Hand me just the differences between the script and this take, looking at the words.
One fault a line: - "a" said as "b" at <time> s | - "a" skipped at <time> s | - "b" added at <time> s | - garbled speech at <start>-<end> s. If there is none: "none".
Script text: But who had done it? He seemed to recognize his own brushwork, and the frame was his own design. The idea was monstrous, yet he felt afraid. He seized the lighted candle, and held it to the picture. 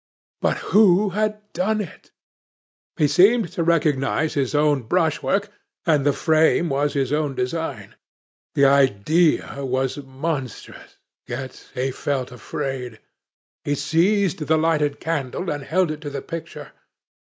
none